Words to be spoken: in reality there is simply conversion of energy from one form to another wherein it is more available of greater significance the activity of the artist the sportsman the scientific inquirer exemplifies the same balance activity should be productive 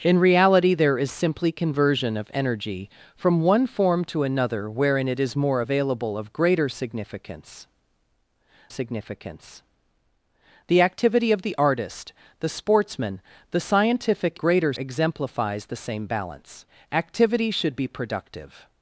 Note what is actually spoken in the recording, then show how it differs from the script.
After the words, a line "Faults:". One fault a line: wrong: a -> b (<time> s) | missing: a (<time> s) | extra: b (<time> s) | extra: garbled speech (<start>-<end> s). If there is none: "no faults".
in reality there is simply conversion of energy from one form to another wherein it is more available of greater significance significance the activity of the artist the sportsman the scientific greater exemplifies the same balance activity should be productive
Faults:
extra: significance (8.7 s)
wrong: inquirer -> greater (14.4 s)